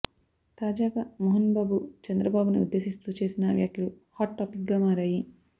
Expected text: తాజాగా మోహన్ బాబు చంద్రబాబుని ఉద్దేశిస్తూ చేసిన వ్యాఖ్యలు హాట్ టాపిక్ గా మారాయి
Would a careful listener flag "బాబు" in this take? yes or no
no